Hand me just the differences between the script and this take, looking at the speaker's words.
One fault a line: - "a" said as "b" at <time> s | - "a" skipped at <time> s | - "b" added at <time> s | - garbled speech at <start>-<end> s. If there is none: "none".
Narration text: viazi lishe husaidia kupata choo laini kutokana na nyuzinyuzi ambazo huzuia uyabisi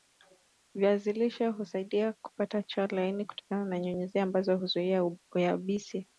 none